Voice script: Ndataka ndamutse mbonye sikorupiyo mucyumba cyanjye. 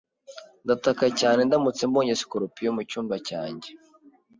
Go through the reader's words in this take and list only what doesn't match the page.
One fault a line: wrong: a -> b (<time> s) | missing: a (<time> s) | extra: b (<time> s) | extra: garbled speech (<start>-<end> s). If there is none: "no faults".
extra: cyane (1.2 s)